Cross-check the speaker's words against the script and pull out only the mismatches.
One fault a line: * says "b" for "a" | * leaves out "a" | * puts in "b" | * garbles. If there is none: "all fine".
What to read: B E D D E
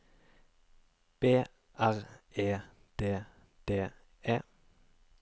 * puts in "R"